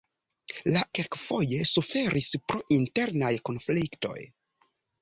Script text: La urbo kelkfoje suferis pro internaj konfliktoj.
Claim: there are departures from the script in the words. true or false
true